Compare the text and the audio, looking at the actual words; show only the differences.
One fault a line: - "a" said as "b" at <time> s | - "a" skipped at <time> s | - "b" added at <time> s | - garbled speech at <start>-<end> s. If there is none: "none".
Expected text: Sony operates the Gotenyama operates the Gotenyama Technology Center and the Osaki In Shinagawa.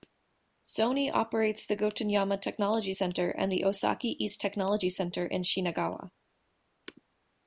- "operates the Gotenyama" skipped at 2.4 s
- "East Technology Center" added at 4.2 s